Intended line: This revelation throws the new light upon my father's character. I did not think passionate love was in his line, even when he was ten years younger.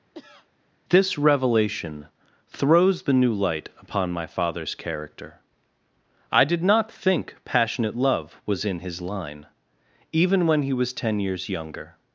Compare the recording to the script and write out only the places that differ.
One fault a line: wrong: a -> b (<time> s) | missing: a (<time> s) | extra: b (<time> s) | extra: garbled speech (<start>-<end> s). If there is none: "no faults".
no faults